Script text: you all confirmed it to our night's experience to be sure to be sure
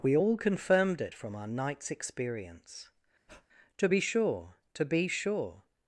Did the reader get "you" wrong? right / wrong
wrong